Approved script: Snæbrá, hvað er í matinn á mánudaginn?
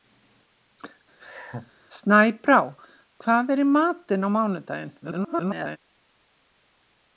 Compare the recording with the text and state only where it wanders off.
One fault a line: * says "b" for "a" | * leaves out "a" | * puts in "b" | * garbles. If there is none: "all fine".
* garbles